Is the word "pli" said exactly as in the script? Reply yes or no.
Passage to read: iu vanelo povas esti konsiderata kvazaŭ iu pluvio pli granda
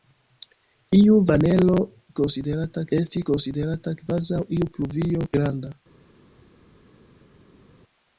no